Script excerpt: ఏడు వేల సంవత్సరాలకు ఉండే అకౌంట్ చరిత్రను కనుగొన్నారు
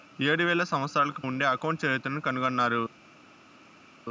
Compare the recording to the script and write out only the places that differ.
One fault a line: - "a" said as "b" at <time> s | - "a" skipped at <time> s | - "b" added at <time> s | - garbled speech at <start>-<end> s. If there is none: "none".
none